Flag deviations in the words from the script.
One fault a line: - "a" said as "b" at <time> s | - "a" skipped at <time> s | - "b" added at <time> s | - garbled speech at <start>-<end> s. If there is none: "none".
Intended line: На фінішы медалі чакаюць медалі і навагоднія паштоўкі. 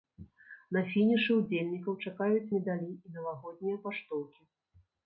- "медалі" said as "ўдзельнікаў" at 1.4 s